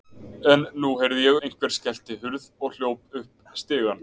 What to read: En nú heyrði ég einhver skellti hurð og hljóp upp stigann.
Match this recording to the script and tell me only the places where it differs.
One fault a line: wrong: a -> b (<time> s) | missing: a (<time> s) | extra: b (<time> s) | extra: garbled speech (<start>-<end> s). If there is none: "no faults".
no faults